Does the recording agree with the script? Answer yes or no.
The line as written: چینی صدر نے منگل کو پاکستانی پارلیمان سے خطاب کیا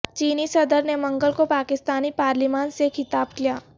yes